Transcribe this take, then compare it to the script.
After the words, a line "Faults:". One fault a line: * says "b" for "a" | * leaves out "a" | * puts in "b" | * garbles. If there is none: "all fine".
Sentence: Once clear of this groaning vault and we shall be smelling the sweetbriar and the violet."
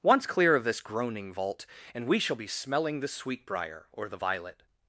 Once clear of this groaning vault and we shall be smelling the sweetbriar or the violet."
Faults:
* says "or" for "and"